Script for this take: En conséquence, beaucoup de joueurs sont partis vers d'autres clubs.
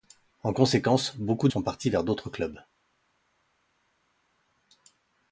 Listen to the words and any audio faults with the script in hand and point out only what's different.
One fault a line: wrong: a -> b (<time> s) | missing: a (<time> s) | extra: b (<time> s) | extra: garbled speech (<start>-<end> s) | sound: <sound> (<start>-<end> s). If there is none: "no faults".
missing: de joueurs (1.5 s)